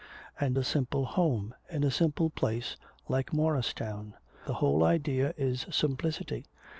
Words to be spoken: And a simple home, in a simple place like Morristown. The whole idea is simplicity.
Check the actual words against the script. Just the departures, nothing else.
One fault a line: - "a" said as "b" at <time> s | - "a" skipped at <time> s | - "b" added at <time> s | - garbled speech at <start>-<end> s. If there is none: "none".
none